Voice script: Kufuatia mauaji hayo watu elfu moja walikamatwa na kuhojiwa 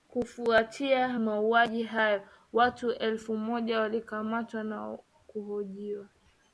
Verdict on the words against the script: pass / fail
pass